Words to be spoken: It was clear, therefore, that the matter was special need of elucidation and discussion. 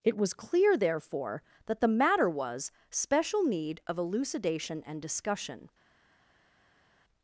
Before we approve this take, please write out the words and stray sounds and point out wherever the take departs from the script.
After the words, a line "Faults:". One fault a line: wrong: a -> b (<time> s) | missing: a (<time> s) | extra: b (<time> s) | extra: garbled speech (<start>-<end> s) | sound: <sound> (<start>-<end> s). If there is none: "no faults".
It was clear, therefore, that the matter was special need of elucidation and discussion.
Faults:
no faults